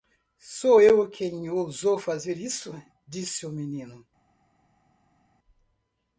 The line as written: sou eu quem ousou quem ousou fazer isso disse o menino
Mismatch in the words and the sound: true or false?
true